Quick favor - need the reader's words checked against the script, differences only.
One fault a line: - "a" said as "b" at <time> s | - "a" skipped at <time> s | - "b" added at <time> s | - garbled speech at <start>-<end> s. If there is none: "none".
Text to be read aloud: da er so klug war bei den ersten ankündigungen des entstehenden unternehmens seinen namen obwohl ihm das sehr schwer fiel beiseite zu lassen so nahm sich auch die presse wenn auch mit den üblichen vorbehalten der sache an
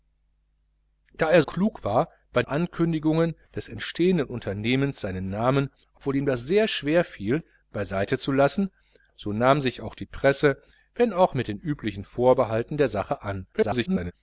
- "so" skipped at 1.4 s
- "den ersten" skipped at 2.4 s
- garbled speech at 13.5-14.1 s